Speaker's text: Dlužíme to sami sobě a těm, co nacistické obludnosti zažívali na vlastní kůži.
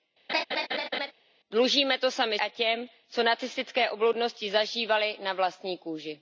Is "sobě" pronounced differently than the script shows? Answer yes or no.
yes